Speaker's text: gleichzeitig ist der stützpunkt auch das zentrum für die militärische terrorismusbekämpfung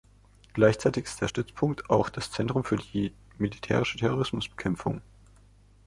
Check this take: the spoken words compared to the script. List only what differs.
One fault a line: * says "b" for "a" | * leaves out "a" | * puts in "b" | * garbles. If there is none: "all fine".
all fine